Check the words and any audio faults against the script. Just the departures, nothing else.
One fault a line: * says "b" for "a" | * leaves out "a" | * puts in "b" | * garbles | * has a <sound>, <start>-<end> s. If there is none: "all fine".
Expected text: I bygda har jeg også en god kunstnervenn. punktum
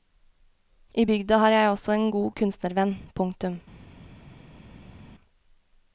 all fine